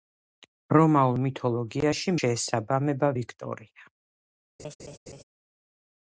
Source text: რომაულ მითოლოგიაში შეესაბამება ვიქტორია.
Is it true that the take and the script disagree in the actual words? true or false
false